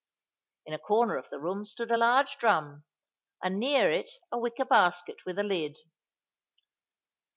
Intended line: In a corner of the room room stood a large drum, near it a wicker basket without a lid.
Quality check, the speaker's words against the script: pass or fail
fail